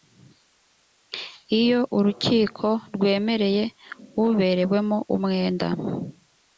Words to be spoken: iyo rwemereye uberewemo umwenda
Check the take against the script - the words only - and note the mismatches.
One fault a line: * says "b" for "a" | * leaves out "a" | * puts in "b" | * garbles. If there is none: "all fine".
* puts in "urukiko"